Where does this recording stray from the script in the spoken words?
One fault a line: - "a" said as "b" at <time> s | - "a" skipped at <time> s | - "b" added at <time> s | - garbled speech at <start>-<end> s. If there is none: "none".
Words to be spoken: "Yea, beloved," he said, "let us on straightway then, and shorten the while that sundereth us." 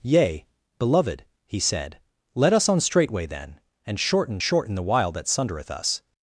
- "shorten" added at 4.4 s